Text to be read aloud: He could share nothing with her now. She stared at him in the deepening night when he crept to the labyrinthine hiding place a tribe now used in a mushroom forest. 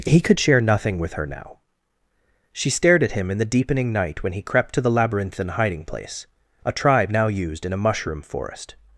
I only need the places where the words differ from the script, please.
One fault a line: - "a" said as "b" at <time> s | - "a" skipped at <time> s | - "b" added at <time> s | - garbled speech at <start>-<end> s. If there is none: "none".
none